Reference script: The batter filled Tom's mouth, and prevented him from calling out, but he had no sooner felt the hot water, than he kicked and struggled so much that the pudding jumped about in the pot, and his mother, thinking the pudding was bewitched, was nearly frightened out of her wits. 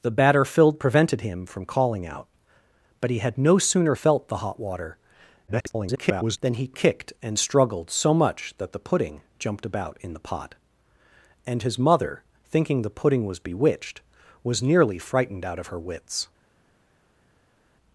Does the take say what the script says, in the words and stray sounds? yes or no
no